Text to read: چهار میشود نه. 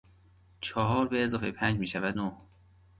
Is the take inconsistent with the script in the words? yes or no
yes